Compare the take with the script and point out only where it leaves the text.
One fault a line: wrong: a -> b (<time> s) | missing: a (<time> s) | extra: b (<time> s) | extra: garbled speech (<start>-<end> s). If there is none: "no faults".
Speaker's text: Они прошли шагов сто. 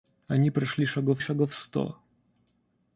extra: шагов (1.2 s)